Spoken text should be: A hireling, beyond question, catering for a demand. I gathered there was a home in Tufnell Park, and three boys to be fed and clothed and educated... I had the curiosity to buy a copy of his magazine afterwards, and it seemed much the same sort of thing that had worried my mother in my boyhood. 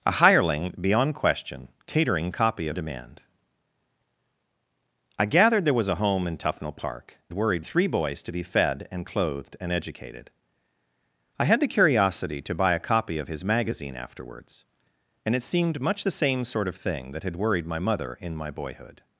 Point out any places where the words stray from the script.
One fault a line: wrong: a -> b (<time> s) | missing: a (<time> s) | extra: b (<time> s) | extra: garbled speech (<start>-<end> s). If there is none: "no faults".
wrong: for -> copy (2.3 s)
wrong: and -> worried (7.3 s)